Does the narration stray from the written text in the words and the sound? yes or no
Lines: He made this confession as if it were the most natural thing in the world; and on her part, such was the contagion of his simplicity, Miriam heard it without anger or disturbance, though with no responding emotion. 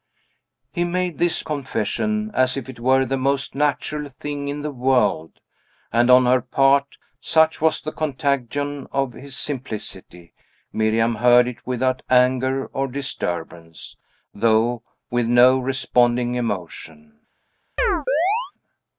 yes